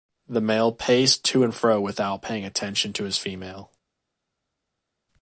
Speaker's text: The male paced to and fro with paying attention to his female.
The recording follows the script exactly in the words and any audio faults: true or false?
false